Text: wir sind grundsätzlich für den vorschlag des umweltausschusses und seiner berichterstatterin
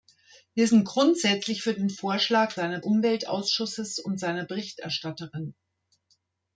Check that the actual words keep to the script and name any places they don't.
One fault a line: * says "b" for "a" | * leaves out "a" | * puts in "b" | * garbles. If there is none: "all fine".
* says "seiner" for "des"